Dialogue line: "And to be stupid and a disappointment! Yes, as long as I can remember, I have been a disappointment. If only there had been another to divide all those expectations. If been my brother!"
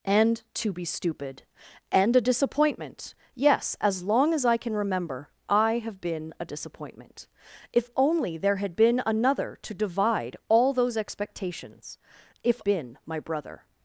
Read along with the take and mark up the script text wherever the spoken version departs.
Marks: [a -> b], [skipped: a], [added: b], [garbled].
"And to be stupid and a disappointment! Yes, as long as I can remember, I have been a disappointment. If only there had been another to divide all those expectations. If been my brother!"